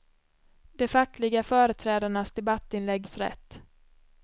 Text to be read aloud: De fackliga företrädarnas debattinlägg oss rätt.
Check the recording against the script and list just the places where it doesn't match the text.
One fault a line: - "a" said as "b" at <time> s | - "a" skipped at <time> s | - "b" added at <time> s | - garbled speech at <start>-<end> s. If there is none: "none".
none